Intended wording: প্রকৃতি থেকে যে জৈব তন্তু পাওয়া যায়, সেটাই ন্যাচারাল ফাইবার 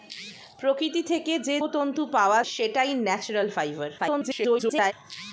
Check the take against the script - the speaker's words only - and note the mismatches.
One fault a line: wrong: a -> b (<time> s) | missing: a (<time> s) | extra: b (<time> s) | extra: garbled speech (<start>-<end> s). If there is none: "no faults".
missing: জৈব (1.6 s)
missing: যায় (2.4 s)
extra: garbled speech (4.0-4.9 s)